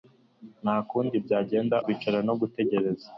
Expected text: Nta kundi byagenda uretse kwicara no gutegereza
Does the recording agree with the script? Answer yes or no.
no